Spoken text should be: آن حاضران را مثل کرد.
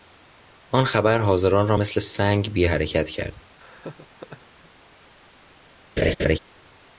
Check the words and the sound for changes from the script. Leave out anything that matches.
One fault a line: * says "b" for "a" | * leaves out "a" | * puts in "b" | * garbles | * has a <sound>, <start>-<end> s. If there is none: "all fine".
* puts in "خبر"
* puts in "سنگ بی حرکت"
* has a laugh, 3.6-4.7 s
* has a laugh, 6.0-6.4 s